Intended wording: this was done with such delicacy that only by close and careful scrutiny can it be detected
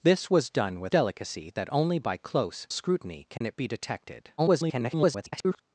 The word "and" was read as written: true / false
false